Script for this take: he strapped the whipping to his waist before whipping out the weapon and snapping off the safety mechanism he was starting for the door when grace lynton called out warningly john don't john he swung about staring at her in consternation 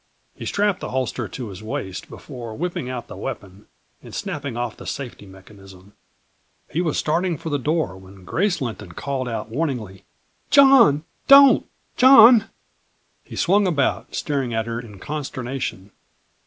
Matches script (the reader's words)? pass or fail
fail